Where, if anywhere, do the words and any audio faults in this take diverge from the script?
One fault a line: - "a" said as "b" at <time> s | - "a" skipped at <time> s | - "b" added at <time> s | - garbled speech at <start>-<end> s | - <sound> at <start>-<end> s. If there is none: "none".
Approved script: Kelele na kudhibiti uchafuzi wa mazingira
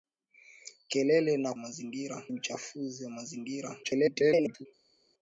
- "kudhibiti" said as "mazingira" at 1.6 s
- garbled speech at 3.8-4.7 s